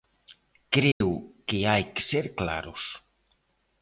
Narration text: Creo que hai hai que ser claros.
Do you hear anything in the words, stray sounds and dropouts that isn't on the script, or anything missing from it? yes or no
yes